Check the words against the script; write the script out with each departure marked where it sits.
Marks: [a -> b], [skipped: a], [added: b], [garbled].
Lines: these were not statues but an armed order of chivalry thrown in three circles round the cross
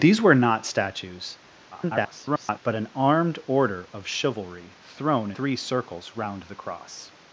these were not statues [garbled] but an armed order of chivalry thrown [skipped: in] three circles round the cross